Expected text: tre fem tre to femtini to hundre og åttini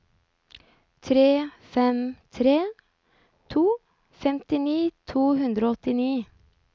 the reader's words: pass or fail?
pass